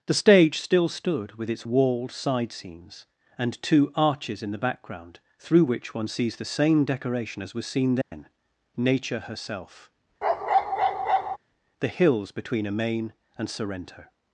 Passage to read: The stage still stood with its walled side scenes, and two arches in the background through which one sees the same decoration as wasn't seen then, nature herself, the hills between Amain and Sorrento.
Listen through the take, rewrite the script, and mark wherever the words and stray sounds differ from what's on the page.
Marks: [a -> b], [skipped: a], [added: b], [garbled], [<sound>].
The stage still stood with its walled side scenes, and two arches in the background through which one sees the same decoration as [wasn't -> was] seen then, [dropout] nature herself, [bark] the hills between Amain and Sorrento.